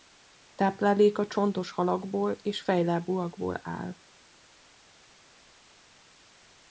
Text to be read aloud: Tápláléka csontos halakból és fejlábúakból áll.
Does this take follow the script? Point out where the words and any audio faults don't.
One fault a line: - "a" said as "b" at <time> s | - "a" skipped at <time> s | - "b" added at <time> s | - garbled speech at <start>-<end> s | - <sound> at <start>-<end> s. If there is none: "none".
none